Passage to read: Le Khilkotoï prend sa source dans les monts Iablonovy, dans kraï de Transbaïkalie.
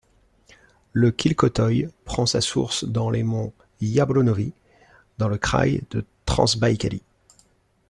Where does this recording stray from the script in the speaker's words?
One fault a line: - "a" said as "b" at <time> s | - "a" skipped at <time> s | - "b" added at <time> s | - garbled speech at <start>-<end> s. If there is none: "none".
- "le" added at 5.3 s